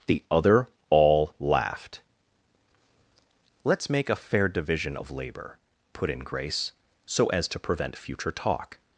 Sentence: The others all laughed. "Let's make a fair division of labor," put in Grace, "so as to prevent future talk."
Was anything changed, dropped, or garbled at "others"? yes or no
yes